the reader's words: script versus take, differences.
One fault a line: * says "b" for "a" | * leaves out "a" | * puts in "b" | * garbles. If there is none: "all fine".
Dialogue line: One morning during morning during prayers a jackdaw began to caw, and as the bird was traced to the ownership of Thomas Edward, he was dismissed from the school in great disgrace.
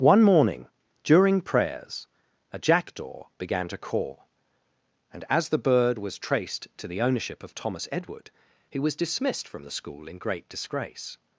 * leaves out "morning during"